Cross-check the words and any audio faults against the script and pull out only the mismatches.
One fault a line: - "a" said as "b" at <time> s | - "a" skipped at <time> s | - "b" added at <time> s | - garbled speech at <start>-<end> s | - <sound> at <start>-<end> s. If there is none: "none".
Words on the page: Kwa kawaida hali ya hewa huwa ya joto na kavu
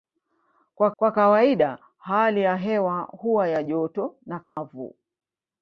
- "kwa" added at 1.0 s
- dropout at 4.4-4.6 s